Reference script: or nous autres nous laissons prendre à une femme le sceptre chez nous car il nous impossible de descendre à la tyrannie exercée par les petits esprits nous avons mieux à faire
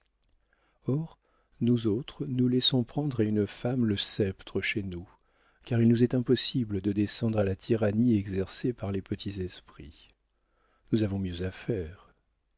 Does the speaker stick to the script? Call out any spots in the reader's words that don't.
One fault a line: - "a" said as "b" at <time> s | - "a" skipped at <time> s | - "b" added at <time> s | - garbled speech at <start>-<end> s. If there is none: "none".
- "est" added at 6.0 s